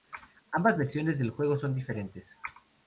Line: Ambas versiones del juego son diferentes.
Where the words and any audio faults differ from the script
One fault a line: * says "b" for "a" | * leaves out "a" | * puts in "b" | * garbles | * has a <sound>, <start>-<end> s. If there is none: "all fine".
all fine